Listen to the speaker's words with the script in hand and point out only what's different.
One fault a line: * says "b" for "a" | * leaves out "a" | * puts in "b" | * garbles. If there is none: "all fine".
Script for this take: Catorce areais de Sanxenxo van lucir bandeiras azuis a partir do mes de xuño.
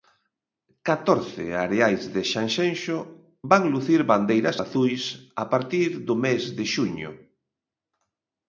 all fine